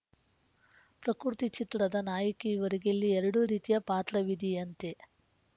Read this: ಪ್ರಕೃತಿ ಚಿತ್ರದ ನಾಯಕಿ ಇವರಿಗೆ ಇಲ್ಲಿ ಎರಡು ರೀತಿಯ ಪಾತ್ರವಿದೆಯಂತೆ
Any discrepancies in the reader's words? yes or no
no